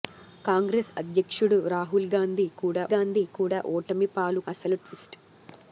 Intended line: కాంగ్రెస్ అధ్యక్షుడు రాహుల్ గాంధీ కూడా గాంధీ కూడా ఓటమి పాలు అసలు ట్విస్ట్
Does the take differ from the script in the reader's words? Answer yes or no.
no